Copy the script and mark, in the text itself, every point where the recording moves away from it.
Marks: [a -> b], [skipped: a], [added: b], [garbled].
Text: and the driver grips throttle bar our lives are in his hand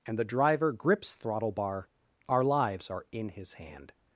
and the driver grips throttle bar our lives are in his hand